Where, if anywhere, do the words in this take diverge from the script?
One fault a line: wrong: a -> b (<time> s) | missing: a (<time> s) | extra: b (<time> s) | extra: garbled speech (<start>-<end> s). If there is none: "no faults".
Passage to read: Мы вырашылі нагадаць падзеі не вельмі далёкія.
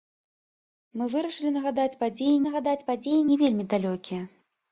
extra: нагадаць падзеі (2.5 s)